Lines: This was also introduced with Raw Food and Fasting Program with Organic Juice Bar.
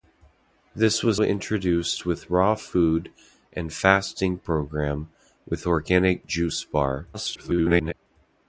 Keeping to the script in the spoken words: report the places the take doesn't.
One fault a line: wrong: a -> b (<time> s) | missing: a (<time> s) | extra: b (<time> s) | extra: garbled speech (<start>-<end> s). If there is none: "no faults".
missing: also (1.2 s)
extra: garbled speech (7.1-7.9 s)